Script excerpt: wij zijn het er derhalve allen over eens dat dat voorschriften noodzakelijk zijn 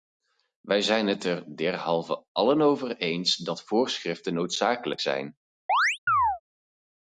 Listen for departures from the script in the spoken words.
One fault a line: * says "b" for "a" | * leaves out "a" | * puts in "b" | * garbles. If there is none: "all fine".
* leaves out "dat"